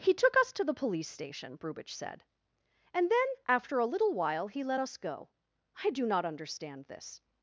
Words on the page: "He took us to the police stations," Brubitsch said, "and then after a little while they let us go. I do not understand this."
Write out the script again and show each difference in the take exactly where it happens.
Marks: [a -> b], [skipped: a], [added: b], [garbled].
"He took us to the police [stations," -> station] Brubitsch said, "and then after a little while [they -> he] let us go. I do not understand this."